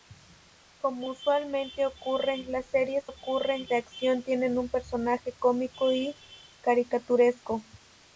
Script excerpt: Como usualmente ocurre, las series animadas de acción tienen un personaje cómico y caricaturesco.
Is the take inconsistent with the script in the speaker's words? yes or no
yes